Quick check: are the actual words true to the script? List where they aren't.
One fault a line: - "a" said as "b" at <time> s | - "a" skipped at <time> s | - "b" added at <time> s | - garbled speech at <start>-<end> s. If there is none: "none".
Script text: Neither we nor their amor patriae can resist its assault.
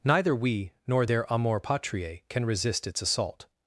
none